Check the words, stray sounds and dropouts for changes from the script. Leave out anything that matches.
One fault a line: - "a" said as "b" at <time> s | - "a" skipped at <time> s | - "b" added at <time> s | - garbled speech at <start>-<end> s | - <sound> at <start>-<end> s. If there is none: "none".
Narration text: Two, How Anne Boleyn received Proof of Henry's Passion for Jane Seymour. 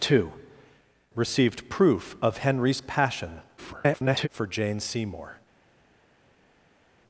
- "How Anne Boleyn" skipped at 0.3 s
- garbled speech at 3.6-4.3 s